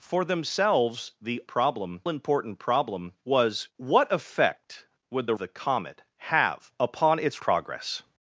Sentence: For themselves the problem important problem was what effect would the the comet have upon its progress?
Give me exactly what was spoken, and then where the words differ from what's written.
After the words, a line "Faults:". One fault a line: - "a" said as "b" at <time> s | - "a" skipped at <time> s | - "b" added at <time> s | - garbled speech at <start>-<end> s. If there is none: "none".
For themselves the problem important problem was what effect would the the comet have upon its progress?
Faults:
none